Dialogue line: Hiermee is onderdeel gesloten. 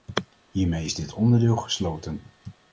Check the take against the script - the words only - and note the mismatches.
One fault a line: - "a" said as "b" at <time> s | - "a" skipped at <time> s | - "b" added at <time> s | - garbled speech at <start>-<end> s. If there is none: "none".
- "dit" added at 0.9 s